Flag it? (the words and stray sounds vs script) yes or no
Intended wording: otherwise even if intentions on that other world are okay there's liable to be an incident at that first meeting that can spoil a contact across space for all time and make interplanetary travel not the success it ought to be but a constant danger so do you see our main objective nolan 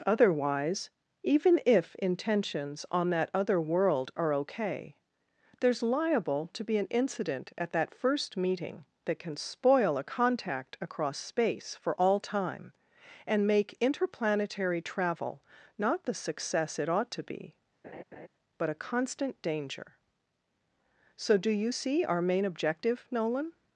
yes